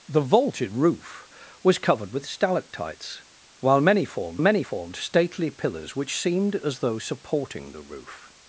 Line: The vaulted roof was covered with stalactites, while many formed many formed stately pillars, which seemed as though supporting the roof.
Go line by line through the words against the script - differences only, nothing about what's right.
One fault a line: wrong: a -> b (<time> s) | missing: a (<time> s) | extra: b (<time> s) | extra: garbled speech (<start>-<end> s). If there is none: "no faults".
no faults